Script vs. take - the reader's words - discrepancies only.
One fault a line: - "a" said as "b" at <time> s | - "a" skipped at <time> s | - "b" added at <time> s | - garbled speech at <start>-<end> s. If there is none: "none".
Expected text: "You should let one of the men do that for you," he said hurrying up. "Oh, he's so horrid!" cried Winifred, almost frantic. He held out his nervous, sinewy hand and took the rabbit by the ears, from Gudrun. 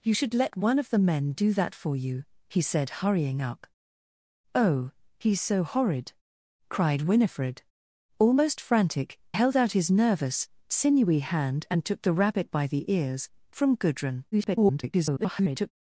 - "He" skipped at 9.2 s
- garbled speech at 14.3-15.7 s